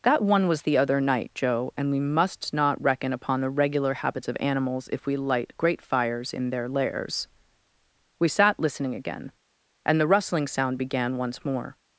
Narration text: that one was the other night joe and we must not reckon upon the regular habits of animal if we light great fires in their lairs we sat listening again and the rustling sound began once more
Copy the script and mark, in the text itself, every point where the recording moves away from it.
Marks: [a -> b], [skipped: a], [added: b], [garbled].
that one was the other night joe and we must not reckon upon the regular habits of [animal -> animals] if we light great fires in their lairs we sat listening again and the rustling sound began once more